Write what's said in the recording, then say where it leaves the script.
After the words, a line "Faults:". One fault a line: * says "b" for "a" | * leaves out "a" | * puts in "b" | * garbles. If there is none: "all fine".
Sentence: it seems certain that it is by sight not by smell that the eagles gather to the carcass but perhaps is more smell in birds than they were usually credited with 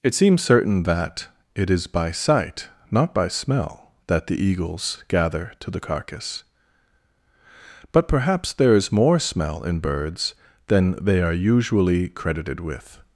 it seems certain that it is by sight not by smell that the eagles gather to the carcass but perhaps there is more smell in birds than they are usually credited with
Faults:
* puts in "there"
* says "are" for "were"